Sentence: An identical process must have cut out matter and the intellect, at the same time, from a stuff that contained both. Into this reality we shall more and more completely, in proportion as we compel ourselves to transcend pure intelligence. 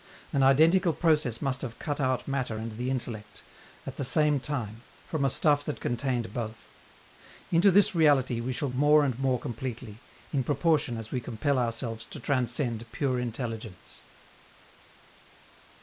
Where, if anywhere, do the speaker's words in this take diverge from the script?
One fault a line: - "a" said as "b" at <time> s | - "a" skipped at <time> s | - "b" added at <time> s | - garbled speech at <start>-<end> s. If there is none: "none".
none